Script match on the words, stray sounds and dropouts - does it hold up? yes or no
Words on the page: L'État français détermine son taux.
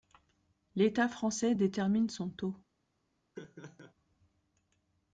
no